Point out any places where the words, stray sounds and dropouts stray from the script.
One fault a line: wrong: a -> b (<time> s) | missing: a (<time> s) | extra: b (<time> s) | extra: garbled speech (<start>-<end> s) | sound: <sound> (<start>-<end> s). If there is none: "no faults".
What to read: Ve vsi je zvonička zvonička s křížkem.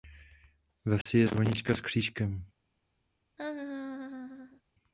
sound: dropout (1.0-1.1 s)
missing: zvonička (1.8 s)
sound: laugh (3.4-4.6 s)